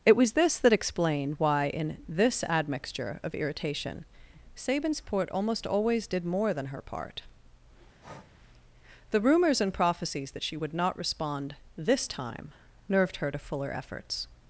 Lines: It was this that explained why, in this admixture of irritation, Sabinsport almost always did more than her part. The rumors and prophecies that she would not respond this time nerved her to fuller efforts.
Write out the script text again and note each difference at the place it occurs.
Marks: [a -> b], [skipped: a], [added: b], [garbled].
It was this that explained why, in this admixture of irritation, Sabinsport almost always did more than her part. The rumors and prophecies that she would not respond this time nerved her to fuller efforts.